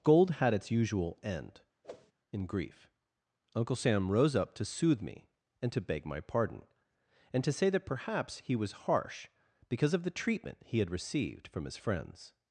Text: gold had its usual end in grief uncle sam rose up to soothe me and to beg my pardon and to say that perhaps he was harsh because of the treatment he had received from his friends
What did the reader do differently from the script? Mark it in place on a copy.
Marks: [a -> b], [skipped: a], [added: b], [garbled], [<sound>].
gold had its usual end [whoosh] in grief uncle sam rose up to soothe me and to beg my pardon and to say that perhaps he was harsh because of the treatment he had received from his friends